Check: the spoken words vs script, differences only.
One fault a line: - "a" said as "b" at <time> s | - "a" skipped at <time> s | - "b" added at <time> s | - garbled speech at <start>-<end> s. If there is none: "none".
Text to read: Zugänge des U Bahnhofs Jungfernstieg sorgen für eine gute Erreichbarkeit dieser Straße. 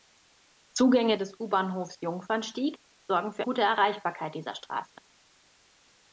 - "eine" skipped at 3.4 s